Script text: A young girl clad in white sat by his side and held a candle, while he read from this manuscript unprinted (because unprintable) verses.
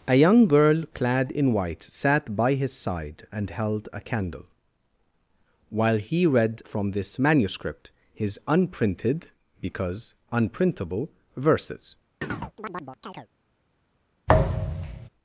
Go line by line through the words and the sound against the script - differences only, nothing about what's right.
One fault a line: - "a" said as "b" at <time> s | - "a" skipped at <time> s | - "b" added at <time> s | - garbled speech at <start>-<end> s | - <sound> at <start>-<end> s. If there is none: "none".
- "his" added at 8.1 s
- chirp at 12.2-13.3 s
- thud at 14.3-15.1 s